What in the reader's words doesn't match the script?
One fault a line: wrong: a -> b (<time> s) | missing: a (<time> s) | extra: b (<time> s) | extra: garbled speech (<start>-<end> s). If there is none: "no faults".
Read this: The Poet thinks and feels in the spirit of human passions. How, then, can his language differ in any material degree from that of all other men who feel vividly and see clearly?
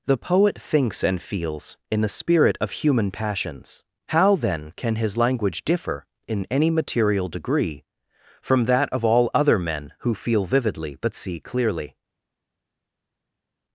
wrong: and -> but (11.0 s)